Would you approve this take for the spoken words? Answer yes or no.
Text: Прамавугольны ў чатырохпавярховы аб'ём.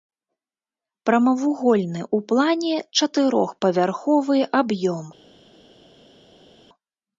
no